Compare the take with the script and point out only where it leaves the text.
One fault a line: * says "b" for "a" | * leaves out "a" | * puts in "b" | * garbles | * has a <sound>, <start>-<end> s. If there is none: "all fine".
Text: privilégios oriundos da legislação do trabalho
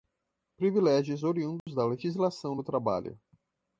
* has a dropout, 1.6-1.7 s